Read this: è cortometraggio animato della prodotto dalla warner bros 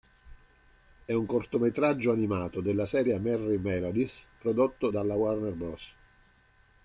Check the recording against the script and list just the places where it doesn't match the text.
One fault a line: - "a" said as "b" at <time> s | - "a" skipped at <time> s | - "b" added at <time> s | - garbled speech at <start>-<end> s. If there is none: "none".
- "un" added at 1.1 s
- "serie merrie melodies" added at 2.9 s